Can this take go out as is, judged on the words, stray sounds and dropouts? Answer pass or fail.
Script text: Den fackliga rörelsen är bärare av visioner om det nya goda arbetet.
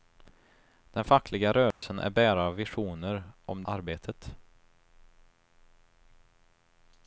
fail